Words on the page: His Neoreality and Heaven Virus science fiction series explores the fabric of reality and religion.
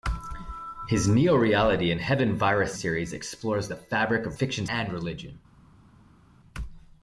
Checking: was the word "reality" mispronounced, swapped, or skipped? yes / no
yes